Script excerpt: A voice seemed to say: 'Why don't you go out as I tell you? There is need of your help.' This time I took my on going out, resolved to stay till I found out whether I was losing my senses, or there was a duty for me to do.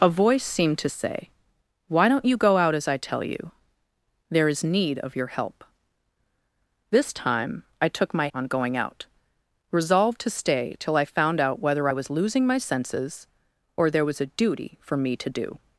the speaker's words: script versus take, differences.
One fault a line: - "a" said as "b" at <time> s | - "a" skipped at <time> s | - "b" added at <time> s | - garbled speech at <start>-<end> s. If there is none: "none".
none